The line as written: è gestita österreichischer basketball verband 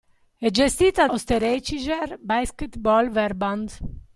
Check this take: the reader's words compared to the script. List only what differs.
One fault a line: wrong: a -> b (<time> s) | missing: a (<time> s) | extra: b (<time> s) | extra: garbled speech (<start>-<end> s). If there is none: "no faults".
no faults